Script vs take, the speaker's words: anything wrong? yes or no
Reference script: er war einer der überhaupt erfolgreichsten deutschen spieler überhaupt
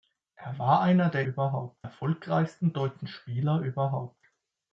no